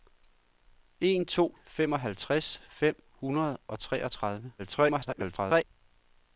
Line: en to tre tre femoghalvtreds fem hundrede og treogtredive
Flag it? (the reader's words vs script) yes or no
yes